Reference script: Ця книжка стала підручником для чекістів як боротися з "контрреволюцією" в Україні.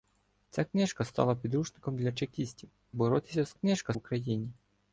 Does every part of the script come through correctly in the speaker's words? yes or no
no